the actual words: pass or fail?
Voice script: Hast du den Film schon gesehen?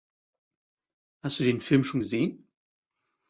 pass